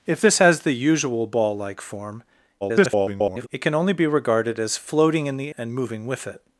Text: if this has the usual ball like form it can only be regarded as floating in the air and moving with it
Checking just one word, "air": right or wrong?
wrong